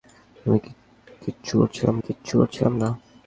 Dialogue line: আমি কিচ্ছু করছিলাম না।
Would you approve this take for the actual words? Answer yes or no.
no